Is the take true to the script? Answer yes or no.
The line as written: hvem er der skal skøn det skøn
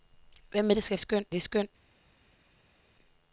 yes